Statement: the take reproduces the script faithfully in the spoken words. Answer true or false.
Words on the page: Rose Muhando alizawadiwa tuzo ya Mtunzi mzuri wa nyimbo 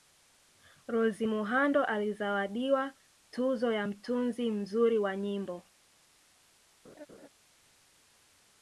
true